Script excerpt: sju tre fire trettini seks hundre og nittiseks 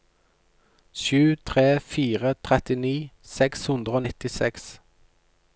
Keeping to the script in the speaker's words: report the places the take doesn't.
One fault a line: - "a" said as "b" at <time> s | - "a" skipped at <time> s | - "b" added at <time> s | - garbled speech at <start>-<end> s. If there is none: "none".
none